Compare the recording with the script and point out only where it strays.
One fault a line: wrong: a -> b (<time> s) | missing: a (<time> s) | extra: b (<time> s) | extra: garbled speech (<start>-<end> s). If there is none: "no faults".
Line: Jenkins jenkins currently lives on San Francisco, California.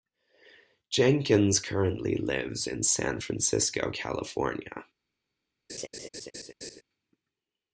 missing: jenkins (1.6 s)
wrong: on -> in (2.6 s)